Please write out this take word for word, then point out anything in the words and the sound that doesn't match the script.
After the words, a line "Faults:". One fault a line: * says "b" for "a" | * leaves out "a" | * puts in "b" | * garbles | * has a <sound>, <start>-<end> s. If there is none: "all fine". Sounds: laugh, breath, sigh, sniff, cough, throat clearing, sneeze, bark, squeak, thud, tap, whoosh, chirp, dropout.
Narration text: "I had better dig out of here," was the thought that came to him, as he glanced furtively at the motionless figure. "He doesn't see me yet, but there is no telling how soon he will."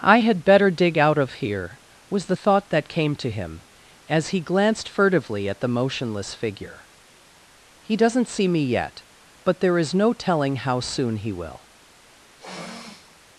"I had better dig out of here," was the thought that came to him, as he glanced furtively at the motionless figure. "He doesn't see me yet, but there is no telling how soon he will."
Faults:
* has a sniff, 12.4-13.2 s